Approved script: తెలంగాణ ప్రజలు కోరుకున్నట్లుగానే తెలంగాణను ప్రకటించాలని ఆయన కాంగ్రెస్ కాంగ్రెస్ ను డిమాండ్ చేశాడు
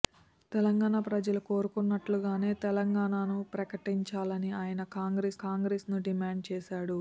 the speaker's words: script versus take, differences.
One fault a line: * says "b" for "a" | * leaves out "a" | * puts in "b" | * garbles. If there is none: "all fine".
all fine